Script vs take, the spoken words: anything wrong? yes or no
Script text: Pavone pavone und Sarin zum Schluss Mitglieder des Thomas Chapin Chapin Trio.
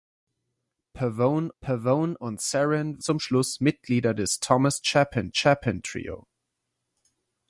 no